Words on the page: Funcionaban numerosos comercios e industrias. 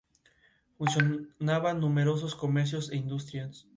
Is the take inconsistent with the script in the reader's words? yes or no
no